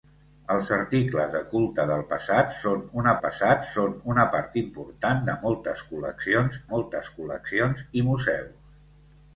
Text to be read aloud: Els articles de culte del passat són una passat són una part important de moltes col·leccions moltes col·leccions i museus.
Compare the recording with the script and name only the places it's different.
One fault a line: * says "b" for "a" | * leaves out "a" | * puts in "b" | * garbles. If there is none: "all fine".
all fine